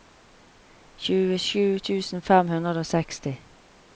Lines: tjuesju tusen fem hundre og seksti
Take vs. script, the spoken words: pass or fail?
pass